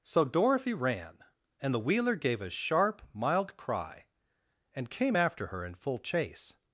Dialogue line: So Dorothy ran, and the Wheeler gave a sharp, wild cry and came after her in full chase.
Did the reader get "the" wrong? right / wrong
right